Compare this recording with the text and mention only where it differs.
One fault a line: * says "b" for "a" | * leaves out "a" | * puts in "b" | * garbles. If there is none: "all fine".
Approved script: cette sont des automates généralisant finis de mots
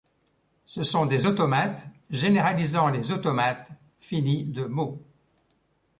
* says "ce" for "cette"
* puts in "les automates"